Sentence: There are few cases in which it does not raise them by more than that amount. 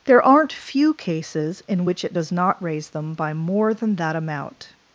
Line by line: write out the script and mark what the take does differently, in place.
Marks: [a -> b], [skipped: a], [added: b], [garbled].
There [are -> aren't] few cases in which it does not raise them by more than that amount.